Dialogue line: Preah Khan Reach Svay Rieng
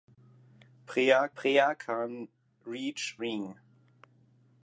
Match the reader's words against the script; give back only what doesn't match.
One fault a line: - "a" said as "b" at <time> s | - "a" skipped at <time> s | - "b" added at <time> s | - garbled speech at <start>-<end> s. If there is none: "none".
- "preah" added at 1.4 s
- "Svay" skipped at 3.2 s